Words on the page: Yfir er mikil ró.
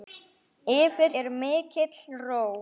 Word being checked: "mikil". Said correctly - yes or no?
yes